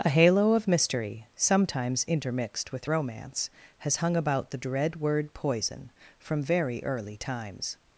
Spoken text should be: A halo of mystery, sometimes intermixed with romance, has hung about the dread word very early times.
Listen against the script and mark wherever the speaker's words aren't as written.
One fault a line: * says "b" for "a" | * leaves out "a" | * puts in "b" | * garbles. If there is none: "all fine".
* puts in "poison from"